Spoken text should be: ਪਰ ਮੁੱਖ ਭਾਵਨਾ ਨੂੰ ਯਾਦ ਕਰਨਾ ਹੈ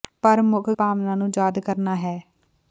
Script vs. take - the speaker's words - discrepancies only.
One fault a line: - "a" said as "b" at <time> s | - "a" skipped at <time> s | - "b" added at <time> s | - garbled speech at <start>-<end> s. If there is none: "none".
none